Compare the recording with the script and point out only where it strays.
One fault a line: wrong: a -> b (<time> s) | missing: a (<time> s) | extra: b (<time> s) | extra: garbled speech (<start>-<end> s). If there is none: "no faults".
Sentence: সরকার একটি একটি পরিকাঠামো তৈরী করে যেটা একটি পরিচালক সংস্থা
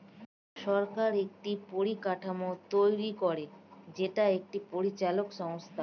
missing: একটি (1.5 s)